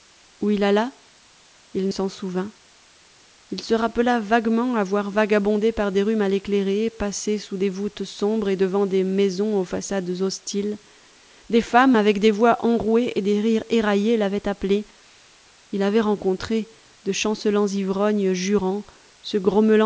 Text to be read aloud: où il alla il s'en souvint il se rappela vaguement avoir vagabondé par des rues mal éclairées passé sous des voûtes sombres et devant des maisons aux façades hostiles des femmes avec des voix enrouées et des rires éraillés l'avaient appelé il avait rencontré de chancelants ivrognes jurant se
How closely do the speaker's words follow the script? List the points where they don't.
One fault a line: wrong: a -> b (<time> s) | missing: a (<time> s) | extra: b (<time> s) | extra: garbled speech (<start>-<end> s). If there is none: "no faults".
no faults